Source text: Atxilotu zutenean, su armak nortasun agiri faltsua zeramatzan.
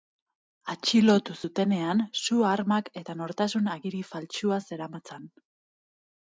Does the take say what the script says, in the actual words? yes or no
no